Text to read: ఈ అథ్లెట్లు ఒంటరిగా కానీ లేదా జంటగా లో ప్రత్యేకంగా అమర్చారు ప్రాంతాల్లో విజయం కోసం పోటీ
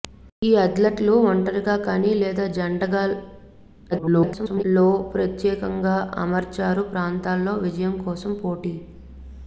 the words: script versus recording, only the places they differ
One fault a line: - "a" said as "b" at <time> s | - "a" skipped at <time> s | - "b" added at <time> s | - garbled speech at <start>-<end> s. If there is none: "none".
- garbled speech at 3.9-4.6 s